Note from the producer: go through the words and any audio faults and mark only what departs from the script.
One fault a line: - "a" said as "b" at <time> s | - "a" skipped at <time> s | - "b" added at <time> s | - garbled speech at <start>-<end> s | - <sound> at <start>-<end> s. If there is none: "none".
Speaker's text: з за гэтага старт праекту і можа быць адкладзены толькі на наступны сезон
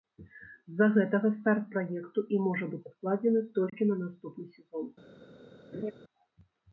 - dropout at 3.7-3.7 s
- laugh at 5.7-5.9 s